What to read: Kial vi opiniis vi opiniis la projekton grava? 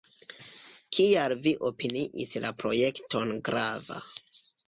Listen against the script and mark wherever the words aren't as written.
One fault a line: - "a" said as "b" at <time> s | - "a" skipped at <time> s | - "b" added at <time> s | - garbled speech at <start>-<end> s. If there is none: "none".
- "vi opiniis" skipped at 2.3 s